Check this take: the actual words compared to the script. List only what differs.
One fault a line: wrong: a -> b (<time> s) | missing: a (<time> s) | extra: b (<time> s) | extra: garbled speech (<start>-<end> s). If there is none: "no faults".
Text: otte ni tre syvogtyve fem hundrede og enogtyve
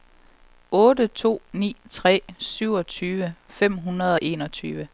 extra: to (1.1 s)